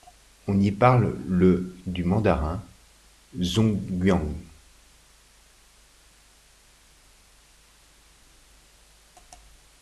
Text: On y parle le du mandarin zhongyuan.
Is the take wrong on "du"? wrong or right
right